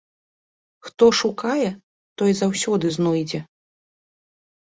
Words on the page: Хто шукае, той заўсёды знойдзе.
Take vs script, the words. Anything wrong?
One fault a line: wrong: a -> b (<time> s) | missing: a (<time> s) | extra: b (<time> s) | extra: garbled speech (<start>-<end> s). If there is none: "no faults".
no faults